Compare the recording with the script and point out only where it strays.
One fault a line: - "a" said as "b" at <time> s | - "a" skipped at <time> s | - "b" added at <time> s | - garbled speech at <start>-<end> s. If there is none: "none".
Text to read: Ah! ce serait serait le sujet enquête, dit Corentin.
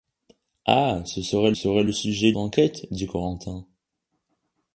none